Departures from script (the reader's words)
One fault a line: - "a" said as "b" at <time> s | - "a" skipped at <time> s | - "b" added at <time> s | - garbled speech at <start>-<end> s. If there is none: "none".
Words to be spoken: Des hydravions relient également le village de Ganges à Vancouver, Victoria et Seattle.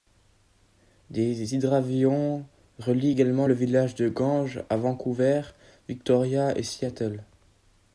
none